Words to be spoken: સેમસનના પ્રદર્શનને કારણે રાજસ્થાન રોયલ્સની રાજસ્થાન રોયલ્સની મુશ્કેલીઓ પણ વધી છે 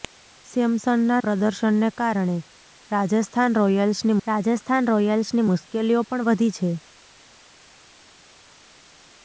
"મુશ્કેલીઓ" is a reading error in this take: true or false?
false